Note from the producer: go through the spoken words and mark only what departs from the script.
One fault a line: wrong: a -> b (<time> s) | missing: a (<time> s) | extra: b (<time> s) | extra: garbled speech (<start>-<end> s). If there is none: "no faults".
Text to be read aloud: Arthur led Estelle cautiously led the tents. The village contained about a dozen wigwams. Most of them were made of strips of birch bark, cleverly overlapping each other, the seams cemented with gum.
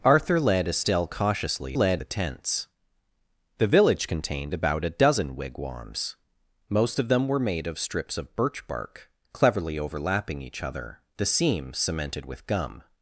no faults